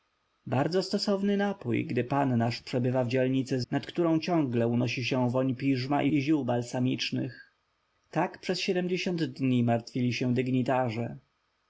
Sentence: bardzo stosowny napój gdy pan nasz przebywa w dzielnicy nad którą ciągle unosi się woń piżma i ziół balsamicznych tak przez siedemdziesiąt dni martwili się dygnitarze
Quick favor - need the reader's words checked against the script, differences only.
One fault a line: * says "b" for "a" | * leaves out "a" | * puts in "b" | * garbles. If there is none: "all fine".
all fine